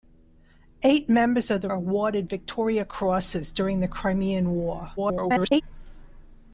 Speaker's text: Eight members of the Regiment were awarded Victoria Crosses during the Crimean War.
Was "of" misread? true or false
false